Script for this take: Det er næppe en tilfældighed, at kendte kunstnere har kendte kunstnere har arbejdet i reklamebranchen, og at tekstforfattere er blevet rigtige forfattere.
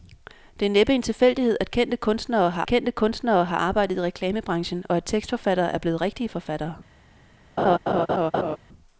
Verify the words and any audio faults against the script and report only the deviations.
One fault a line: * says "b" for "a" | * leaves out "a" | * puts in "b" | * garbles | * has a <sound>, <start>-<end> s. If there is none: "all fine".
* has a laugh, 7.6-8.6 s